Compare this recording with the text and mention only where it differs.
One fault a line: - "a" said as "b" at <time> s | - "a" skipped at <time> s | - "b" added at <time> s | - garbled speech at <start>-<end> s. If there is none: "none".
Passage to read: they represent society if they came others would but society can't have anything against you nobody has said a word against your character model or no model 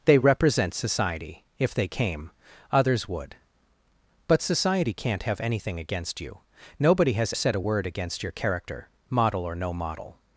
none